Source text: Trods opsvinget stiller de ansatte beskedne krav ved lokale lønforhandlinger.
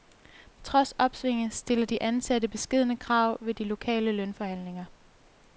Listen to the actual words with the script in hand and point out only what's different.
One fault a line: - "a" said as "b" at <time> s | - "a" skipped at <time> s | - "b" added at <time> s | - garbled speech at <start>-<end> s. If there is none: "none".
- "de" added at 3.5 s